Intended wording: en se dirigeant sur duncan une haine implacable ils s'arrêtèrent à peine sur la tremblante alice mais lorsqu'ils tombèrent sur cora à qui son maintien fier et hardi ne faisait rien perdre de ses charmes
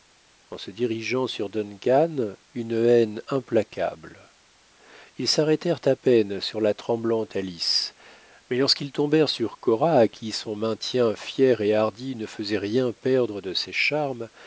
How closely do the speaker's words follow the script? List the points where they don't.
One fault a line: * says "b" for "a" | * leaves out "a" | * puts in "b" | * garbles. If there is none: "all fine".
all fine